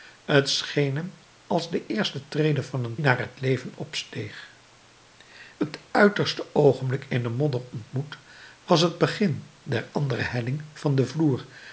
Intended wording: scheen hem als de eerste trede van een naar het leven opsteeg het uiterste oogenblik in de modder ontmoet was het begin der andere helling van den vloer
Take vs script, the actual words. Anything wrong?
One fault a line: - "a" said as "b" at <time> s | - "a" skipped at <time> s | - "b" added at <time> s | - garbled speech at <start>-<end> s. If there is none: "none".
none